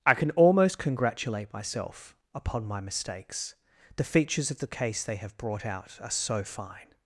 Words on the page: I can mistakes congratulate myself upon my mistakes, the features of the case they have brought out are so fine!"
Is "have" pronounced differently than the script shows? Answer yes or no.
no